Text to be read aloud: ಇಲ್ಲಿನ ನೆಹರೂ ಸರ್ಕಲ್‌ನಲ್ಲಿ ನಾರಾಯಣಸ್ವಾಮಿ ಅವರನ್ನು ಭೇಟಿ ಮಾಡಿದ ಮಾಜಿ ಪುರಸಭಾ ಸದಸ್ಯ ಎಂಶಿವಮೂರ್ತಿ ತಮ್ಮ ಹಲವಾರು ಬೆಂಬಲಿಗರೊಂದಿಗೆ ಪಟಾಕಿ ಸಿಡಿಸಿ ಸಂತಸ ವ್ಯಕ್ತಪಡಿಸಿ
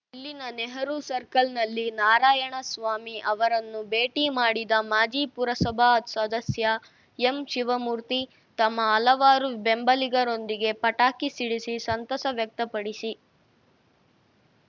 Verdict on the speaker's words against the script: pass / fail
pass